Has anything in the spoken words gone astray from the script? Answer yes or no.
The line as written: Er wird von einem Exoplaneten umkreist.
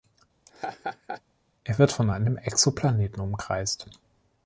no